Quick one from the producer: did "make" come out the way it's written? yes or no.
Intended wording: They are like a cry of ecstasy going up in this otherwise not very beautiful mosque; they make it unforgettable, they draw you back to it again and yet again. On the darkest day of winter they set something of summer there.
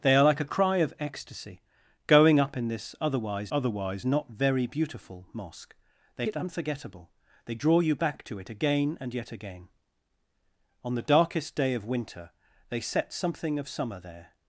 no